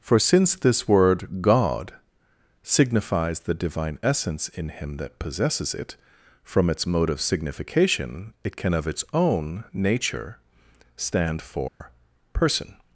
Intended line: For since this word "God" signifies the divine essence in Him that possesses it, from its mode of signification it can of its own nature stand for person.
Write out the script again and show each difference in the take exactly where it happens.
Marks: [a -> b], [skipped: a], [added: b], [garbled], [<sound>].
For since this word "God" signifies the divine essence in Him that possesses it, from its mode of signification it can of its own nature stand for [dropout] person.